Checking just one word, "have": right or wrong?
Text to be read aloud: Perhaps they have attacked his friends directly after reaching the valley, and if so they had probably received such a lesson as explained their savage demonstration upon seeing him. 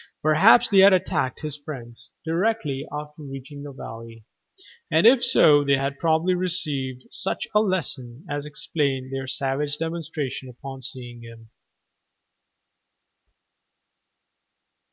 wrong